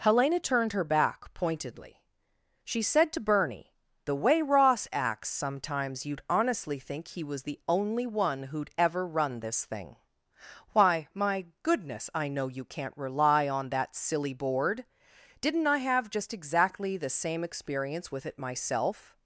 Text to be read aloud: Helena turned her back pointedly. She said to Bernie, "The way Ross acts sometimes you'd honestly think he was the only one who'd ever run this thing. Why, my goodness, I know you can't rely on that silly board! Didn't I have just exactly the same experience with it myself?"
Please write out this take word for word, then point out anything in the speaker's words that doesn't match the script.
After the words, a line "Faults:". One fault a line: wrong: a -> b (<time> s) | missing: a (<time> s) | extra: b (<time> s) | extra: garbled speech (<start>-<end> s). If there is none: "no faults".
Helena turned her back pointedly. She said to Bernie, "The way Ross acts sometimes you'd honestly think he was the only one who'd ever run this thing. Why, my goodness, I know you can't rely on that silly board! Didn't I have just exactly the same experience with it myself?"
Faults:
no faults